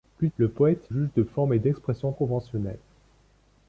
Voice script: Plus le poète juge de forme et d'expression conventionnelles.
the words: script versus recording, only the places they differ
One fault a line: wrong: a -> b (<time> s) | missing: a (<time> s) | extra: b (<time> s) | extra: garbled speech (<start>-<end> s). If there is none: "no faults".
no faults